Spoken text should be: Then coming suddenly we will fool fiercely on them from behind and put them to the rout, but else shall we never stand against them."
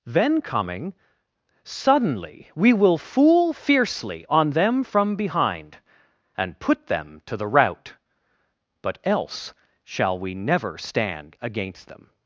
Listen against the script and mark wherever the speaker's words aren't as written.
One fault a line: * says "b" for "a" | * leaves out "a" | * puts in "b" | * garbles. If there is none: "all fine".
all fine